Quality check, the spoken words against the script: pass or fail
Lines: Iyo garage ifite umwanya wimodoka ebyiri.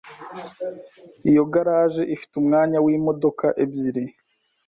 pass